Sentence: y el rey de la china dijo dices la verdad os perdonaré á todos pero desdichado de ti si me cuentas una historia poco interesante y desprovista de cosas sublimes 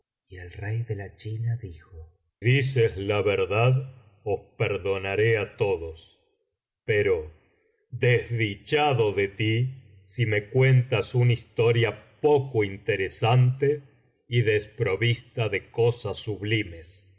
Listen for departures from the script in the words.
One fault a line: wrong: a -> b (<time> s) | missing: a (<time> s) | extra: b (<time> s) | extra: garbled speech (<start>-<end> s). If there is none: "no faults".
no faults